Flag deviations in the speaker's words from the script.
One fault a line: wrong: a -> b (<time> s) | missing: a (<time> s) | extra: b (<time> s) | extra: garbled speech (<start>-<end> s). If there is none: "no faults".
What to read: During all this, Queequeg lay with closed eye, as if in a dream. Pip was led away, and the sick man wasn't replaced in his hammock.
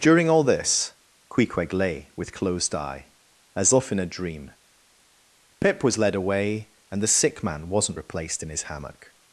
no faults